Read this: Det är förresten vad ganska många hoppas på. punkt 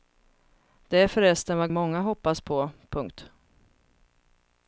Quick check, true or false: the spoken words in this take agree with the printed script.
false